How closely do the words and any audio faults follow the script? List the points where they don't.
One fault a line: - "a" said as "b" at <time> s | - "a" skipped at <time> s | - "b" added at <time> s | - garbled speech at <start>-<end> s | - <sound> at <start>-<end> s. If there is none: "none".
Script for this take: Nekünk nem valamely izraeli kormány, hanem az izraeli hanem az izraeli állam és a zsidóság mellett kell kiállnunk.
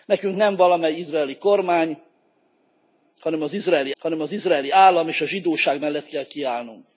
none